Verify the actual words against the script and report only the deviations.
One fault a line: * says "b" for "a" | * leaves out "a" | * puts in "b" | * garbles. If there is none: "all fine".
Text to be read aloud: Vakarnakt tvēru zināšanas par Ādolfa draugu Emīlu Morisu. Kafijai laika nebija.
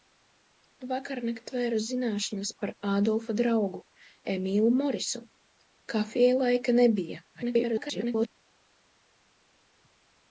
* garbles